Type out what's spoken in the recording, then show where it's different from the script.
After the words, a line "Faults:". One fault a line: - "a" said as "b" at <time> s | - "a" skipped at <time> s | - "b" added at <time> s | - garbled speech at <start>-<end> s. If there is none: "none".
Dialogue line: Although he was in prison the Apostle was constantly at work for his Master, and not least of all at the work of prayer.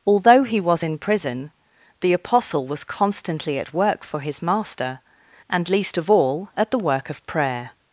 Although he was in prison the Apostle was constantly at work for his Master, and least of all at the work of prayer.
Faults:
- "not" skipped at 5.7 s